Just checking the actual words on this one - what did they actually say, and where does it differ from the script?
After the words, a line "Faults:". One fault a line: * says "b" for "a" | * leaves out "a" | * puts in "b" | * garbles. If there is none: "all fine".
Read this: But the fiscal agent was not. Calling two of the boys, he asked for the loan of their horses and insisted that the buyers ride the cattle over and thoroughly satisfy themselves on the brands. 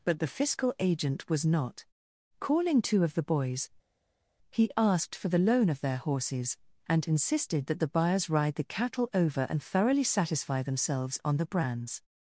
But the fiscal agent was not. Calling two of the boys, he asked for the loan of their horses and insisted that the buyers ride the cattle over and thoroughly satisfy themselves on the brands.
Faults:
all fine